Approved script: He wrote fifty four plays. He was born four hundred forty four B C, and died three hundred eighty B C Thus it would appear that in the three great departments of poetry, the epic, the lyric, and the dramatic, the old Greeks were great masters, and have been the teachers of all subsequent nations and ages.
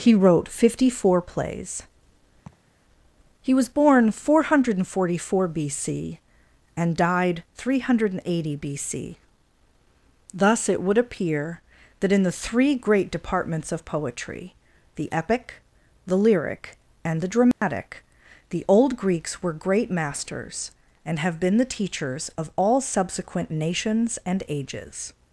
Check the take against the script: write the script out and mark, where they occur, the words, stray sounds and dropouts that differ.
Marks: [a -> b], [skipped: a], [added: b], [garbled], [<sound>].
He wrote fifty four plays. [laugh] He was born four hundred forty four B C, and died three hundred eighty B C Thus it would appear that in the three great departments of poetry, the epic, the lyric, and the dramatic, [dropout] the old Greeks were great masters, and have been the teachers of all subsequent nations and ages.